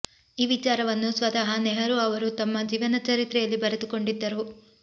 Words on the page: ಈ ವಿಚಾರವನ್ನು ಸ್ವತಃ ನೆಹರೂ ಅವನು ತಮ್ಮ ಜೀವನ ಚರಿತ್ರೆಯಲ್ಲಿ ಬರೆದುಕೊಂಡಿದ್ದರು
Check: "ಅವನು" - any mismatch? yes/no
yes